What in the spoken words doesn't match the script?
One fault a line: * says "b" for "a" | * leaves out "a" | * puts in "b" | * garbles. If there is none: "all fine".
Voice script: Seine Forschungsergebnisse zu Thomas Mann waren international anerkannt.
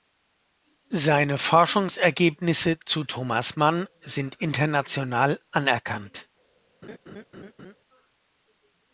* says "sind" for "waren"